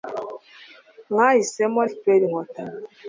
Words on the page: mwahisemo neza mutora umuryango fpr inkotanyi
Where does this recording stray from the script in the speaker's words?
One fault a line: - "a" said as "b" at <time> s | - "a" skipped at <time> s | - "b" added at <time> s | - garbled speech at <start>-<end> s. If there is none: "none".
- "neza mutora umuryango" skipped at 1.8 s